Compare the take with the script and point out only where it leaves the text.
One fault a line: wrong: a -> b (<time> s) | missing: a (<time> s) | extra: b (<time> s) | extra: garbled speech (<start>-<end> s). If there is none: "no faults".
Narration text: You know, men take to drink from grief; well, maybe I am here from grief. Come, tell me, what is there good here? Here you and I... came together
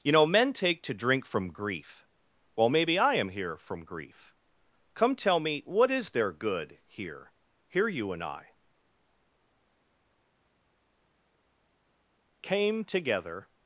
no faults